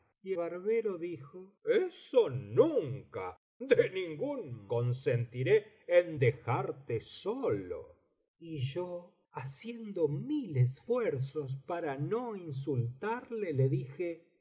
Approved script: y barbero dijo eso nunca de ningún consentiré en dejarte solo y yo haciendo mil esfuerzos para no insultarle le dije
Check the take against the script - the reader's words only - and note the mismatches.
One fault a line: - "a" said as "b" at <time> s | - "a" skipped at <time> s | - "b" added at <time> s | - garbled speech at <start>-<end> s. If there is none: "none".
none